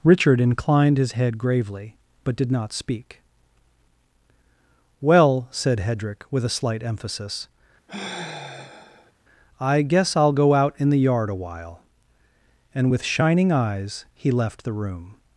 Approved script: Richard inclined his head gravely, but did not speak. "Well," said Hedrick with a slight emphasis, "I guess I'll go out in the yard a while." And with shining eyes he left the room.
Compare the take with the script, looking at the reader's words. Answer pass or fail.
pass